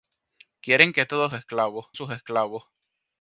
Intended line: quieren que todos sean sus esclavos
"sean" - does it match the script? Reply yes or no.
no